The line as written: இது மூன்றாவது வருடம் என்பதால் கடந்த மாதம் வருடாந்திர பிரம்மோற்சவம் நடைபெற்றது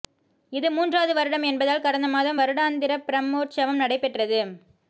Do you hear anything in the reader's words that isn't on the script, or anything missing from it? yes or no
no